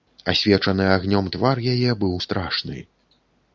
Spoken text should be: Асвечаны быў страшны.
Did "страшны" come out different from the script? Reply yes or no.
no